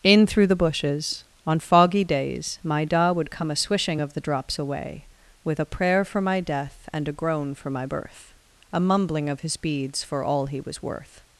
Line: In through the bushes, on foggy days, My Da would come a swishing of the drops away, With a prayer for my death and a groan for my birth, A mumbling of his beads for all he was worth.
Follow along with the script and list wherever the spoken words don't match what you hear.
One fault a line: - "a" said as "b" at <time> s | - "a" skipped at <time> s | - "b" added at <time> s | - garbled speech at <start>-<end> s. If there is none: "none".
none